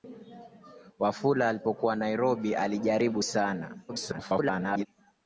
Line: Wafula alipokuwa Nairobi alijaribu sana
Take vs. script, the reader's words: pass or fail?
fail